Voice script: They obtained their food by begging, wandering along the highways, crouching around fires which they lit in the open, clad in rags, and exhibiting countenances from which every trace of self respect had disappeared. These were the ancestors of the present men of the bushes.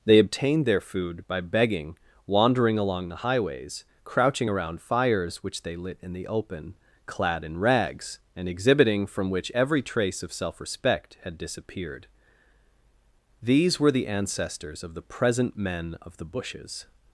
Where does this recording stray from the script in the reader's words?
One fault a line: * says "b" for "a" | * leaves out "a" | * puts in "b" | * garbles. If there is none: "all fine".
* leaves out "countenances"